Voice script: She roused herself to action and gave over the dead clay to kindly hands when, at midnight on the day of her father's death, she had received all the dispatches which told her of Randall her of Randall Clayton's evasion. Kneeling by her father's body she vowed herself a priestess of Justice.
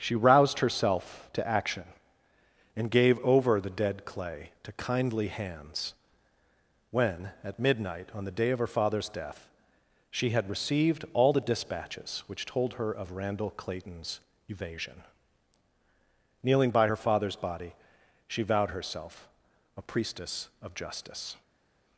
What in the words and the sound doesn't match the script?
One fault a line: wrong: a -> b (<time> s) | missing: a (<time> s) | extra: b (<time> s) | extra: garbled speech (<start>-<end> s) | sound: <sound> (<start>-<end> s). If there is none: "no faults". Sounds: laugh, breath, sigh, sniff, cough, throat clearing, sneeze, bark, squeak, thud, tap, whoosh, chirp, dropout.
missing: her of Randall (13.5 s)